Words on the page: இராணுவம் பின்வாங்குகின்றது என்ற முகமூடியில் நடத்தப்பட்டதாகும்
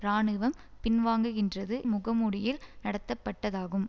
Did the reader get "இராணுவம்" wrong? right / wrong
right